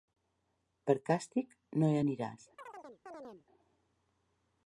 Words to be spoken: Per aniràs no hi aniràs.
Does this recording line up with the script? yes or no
no